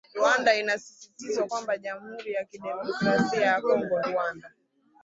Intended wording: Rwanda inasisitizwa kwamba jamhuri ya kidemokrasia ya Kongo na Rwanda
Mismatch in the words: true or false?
true